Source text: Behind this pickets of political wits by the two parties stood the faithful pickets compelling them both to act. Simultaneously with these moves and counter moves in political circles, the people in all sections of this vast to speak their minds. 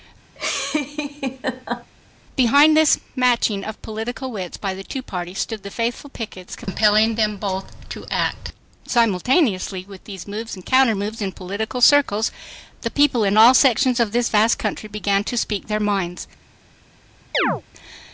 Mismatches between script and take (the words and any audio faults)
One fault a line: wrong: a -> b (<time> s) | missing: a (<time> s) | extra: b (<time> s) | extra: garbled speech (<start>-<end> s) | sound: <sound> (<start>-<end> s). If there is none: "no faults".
sound: laugh (0.4-1.9 s)
wrong: pickets -> matching (3.1 s)
extra: country began (14.6 s)
sound: chirp (17.3-17.6 s)